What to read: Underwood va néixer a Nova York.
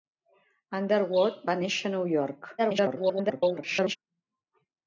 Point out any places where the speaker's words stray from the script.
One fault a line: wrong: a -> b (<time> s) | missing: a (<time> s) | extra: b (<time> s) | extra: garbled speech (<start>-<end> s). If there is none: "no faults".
extra: garbled speech (2.6-4.0 s)